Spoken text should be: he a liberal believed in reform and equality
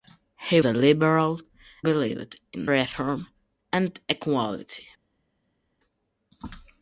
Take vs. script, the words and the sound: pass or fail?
pass